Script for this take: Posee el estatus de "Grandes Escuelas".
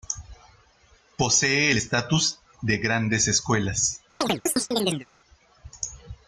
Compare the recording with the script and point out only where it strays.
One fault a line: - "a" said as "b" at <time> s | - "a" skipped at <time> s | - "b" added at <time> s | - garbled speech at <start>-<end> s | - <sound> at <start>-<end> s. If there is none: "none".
- chirp at 4.2-5.1 s